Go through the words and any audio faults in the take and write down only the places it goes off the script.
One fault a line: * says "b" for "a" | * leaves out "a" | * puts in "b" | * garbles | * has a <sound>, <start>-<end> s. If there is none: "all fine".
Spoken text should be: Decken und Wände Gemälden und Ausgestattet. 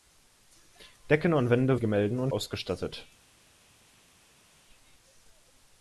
all fine